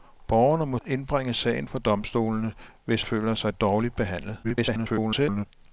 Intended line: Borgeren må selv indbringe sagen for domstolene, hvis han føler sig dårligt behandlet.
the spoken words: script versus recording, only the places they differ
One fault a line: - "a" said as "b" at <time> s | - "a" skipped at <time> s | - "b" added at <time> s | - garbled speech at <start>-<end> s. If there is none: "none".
- "selv" skipped at 0.8 s
- "han" skipped at 3.0 s
- garbled speech at 4.4-5.5 s